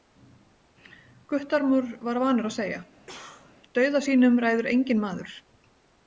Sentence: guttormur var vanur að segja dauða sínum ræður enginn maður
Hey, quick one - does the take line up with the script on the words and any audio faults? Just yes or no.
no